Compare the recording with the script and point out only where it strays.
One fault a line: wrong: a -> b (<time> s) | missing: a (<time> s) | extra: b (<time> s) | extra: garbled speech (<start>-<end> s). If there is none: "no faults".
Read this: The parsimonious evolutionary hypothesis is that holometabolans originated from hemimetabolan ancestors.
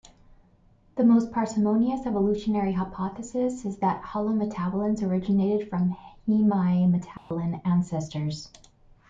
extra: most (1.0 s)